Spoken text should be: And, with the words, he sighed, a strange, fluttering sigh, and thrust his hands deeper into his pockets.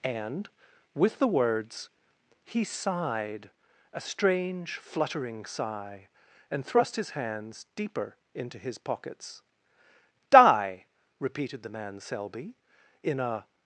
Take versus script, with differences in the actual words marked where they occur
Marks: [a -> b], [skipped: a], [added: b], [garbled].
And, with the words, he sighed, a strange, fluttering sigh, and thrust his hands deeper into his pockets. [added: Die repeated the man Selby in a]